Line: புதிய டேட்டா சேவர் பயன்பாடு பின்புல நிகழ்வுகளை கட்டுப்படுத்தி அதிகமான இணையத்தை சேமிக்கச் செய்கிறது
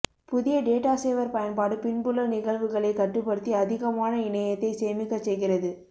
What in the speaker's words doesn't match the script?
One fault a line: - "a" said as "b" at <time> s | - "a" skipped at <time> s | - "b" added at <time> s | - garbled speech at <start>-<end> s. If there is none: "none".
none